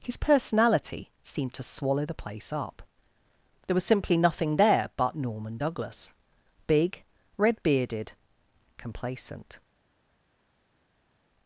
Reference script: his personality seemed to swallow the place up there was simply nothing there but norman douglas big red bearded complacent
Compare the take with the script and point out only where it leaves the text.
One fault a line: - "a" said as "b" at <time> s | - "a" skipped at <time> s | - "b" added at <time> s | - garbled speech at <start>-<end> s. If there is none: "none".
none